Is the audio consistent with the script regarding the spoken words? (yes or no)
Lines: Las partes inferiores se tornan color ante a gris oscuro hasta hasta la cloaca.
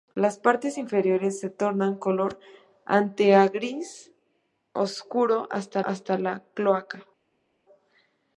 yes